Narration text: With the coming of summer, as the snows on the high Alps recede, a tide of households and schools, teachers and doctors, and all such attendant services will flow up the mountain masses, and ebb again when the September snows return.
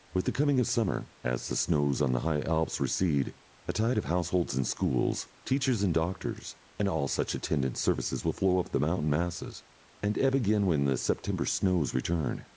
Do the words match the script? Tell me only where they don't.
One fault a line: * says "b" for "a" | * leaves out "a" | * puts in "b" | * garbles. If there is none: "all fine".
all fine